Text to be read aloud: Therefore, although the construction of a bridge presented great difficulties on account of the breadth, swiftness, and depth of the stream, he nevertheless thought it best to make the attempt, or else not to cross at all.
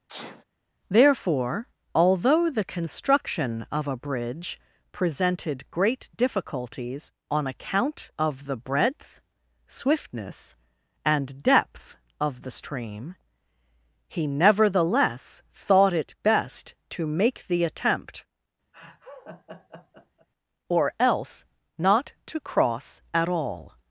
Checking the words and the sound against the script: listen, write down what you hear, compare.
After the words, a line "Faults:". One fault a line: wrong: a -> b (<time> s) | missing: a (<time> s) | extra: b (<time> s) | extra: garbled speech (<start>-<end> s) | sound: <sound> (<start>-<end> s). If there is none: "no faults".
Therefore, although the construction of a bridge presented great difficulties on account of the breadth, swiftness, and depth of the stream, he nevertheless thought it best to make the attempt, or else not to cross at all.
Faults:
sound: sneeze (0.1-0.4 s)
sound: laugh (18.7-20.3 s)